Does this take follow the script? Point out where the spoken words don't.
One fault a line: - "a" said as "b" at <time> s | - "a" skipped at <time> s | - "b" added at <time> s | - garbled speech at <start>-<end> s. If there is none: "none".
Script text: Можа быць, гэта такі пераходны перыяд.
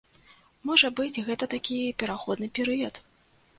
none